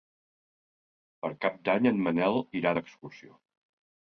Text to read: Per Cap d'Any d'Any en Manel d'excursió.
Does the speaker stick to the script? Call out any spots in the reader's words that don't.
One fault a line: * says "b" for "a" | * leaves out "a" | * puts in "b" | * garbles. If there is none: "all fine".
* leaves out "d'Any"
* puts in "irà"